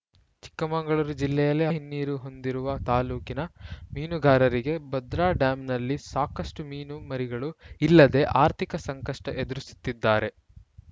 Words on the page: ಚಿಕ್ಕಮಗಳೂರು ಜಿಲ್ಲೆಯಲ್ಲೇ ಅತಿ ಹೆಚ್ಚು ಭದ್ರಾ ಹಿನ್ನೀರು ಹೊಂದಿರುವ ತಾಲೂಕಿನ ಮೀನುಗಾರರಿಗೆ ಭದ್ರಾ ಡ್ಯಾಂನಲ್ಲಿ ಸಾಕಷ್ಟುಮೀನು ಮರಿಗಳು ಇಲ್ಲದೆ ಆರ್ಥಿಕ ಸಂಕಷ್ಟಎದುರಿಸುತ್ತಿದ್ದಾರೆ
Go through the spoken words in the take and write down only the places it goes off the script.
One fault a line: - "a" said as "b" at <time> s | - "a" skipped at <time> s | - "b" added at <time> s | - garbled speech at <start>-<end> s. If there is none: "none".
- "ಅತಿ ಹೆಚ್ಚು ಭದ್ರಾ" skipped at 1.6 s